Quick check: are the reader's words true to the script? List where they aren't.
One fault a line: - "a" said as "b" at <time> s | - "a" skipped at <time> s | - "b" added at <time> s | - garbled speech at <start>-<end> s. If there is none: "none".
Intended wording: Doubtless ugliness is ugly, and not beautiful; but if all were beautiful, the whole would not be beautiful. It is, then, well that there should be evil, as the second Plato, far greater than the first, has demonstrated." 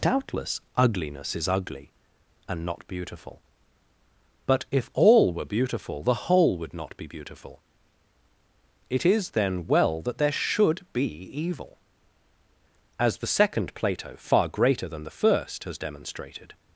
none